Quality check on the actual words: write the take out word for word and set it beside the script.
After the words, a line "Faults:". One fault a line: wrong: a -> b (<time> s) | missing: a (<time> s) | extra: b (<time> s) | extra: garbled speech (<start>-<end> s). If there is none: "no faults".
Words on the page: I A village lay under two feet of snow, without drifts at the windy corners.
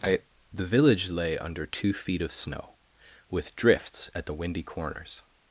I The village lay under two feet of snow, with drifts at the windy corners.
Faults:
wrong: A -> The (0.5 s)
wrong: without -> with (3.3 s)